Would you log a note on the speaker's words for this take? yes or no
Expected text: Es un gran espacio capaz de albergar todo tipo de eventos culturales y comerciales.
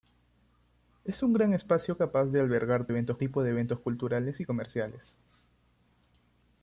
yes